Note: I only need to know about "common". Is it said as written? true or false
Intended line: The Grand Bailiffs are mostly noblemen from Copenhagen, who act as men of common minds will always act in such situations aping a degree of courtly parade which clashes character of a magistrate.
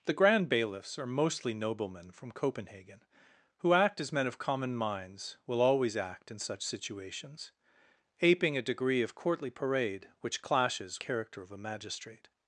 true